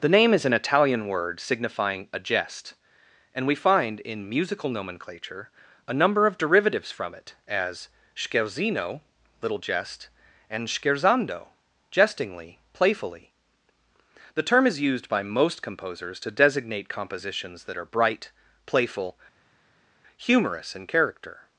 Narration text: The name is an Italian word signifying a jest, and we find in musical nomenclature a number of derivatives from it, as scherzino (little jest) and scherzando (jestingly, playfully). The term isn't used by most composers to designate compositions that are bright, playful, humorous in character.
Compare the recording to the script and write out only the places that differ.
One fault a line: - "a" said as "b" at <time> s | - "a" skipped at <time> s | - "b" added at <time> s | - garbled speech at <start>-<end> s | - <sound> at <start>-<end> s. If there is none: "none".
- "isn't" said as "is" at 14.7 s